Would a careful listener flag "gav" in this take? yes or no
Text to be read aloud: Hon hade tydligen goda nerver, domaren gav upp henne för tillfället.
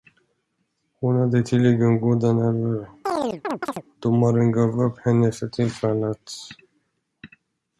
no